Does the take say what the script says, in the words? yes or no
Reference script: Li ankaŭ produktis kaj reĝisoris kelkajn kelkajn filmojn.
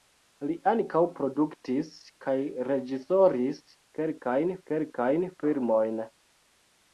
yes